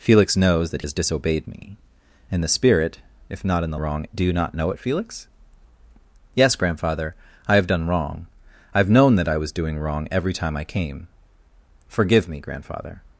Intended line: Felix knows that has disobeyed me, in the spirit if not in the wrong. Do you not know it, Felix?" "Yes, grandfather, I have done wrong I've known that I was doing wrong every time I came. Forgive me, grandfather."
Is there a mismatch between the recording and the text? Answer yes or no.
no